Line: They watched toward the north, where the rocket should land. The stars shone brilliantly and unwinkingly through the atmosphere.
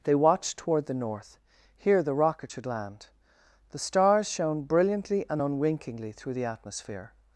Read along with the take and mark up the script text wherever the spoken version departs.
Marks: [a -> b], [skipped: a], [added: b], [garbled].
They watched toward the north, [where -> here] the rocket should land. The stars shone brilliantly and unwinkingly through the atmosphere.